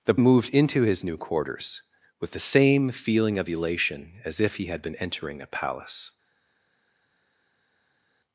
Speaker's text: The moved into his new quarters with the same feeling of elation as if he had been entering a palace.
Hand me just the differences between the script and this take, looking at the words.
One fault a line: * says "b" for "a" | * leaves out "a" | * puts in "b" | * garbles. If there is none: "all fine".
all fine